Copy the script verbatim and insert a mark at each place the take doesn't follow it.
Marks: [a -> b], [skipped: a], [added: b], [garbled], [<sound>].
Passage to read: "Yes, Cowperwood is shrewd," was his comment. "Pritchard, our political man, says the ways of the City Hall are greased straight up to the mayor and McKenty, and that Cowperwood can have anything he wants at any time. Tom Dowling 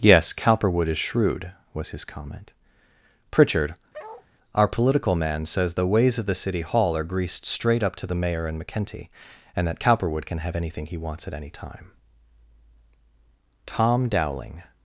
"Yes, Cowperwood is shrewd," was his comment. "Pritchard, [bark] our political man, says the ways of the City Hall are greased straight up to the mayor and McKenty, and that Cowperwood can have anything he wants at any time. Tom Dowling